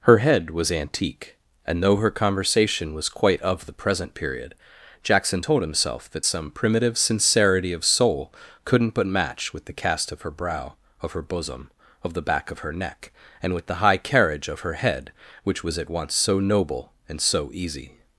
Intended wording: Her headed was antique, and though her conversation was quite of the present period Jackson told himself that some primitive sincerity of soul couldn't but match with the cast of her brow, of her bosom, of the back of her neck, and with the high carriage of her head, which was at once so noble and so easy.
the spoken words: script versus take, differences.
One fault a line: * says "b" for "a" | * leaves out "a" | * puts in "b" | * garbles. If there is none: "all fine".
* says "head" for "headed"